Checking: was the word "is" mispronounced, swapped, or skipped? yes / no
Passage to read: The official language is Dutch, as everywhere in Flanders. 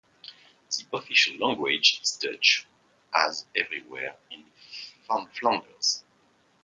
no